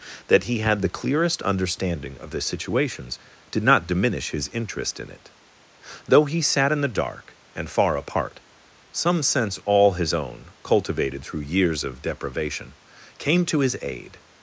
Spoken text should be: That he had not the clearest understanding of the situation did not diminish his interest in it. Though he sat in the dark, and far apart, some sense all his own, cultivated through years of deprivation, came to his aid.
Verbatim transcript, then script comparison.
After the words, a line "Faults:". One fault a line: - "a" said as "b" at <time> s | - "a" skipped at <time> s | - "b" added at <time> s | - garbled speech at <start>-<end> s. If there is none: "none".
That he had the clearest understanding of the situations did not diminish his interest in it. Though he sat in the dark, and far apart, some sense all his own, cultivated through years of deprivation, came to his aid.
Faults:
- "not" skipped at 0.8 s
- "situation" said as "situations" at 2.4 s